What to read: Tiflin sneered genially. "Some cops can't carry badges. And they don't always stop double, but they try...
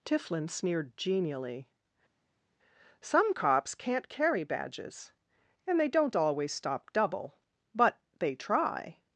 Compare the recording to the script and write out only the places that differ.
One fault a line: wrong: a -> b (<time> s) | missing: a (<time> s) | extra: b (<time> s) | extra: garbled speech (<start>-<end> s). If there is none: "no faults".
no faults